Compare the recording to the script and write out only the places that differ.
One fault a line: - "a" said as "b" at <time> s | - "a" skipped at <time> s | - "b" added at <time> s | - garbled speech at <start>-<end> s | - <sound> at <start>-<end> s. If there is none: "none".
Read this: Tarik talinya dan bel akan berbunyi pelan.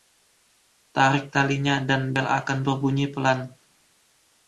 none